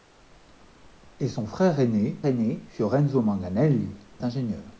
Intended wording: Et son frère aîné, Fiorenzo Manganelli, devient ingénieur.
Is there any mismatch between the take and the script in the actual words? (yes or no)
yes